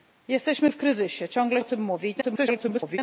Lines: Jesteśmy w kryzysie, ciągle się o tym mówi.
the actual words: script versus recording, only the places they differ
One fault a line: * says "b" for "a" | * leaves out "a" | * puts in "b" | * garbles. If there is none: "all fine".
* leaves out "się"
* garbles